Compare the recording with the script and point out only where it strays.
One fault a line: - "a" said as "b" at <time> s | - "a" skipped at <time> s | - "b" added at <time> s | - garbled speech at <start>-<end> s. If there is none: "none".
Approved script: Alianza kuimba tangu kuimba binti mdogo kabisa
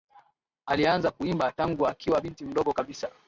- "kuimba" said as "akiwa" at 1.9 s